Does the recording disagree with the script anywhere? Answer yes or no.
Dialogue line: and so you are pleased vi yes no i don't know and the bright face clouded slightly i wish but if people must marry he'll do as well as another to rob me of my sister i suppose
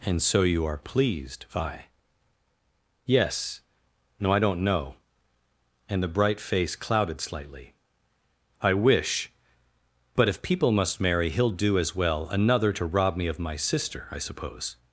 yes